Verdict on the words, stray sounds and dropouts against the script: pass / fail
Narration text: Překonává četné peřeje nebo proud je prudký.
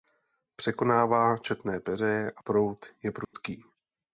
fail